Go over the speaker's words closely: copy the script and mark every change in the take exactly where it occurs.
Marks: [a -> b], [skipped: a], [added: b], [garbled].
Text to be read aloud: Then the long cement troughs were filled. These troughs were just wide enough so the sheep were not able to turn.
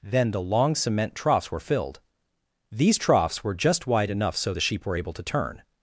Then the long cement troughs were filled. These troughs were just wide enough so the sheep were [skipped: not] able to turn.